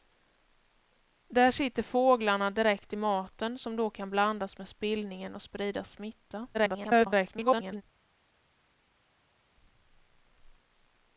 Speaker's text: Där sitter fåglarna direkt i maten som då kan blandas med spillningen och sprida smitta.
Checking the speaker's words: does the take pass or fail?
fail